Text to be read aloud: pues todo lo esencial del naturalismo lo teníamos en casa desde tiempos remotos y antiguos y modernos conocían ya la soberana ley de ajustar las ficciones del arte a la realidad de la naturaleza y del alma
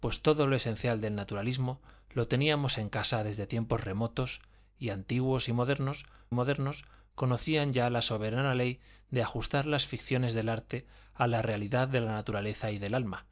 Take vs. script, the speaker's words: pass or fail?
fail